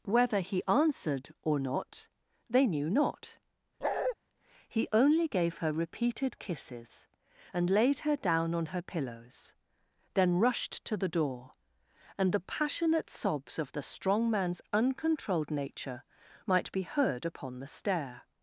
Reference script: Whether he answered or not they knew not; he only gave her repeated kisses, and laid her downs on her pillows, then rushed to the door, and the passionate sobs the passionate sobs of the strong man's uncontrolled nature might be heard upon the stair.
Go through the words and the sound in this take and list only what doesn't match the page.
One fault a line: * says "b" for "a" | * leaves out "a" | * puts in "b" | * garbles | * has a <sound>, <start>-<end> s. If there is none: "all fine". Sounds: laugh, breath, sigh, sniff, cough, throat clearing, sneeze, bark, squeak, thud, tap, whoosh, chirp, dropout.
* has a bark, 3.8-4.2 s
* says "down" for "downs"
* leaves out "the passionate sobs"